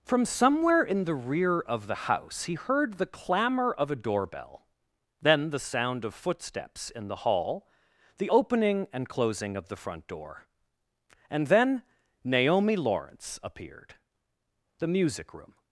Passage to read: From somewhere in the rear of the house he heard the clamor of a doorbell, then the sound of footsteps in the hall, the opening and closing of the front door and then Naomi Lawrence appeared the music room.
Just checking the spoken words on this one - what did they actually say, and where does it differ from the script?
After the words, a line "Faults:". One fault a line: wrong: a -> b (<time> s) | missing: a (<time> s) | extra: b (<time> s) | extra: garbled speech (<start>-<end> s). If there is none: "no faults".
From somewhere in the rear of the house he heard the clamor of a doorbell, then the sound of footsteps in the hall, the opening and closing of the front door and then Naomi Lawrence appeared the music room.
Faults:
no faults